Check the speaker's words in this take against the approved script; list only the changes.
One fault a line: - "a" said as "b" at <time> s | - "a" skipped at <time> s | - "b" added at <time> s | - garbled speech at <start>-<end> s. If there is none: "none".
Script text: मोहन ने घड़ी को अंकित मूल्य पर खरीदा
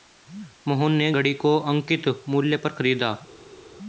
none